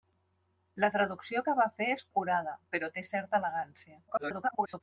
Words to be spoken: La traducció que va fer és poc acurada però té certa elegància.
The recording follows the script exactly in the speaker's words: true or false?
false